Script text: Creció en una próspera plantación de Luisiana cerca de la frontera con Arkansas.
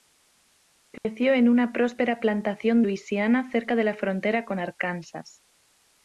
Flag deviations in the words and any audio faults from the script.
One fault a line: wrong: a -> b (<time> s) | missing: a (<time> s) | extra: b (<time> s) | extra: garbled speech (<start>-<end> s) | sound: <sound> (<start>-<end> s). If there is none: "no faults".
sound: dropout (1.0-1.1 s)
missing: de (2.8 s)